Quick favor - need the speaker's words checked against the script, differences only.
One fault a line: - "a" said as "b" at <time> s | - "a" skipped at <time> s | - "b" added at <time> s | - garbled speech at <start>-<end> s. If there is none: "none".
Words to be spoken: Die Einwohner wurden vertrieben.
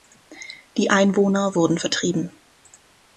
none